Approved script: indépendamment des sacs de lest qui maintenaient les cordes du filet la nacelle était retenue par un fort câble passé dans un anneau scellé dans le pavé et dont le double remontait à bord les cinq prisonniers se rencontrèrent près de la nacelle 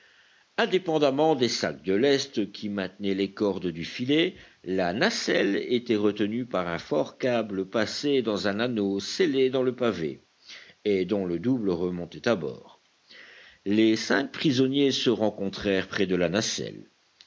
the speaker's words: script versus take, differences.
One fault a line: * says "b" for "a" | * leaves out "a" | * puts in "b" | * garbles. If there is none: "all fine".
all fine